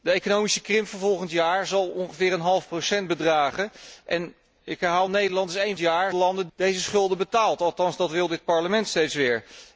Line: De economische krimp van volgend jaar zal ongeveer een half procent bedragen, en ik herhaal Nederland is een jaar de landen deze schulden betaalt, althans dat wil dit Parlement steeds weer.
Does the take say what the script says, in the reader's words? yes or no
yes